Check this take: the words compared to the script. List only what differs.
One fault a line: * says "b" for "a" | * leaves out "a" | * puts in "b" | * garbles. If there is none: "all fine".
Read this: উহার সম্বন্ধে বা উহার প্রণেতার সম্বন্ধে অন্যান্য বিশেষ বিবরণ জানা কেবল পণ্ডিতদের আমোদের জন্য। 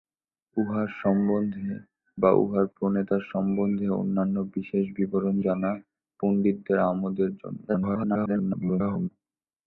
* leaves out "কেবল"
* garbles